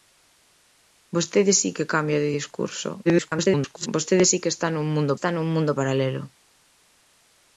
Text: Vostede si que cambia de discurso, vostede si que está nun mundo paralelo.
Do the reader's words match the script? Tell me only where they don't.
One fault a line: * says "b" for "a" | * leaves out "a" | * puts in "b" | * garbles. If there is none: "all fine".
* garbles
* puts in "está nun mundo"